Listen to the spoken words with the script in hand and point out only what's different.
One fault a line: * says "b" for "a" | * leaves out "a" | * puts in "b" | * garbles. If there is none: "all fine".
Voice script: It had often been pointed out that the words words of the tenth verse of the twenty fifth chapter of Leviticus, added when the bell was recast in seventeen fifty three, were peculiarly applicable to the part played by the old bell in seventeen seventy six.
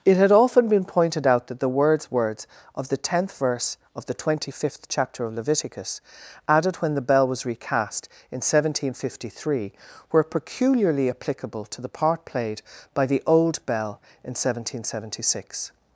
all fine